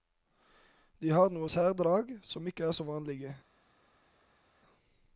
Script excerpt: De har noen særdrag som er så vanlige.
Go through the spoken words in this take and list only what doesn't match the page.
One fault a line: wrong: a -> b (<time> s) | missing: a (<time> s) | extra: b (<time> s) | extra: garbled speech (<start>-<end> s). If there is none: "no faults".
extra: ikke (2.5 s)